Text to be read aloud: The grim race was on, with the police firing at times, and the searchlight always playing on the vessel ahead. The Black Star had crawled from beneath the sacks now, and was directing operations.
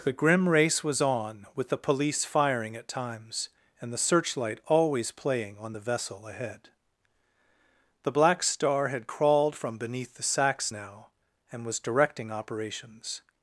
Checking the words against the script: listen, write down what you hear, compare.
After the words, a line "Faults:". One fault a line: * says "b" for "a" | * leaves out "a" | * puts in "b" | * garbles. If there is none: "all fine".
The grim race was on, with the police firing at times, and the searchlight always playing on the vessel ahead. The Black Star had crawled from beneath the sacks now, and was directing operations.
Faults:
all fine